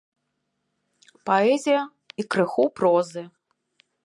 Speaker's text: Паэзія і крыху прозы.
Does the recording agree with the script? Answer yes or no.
yes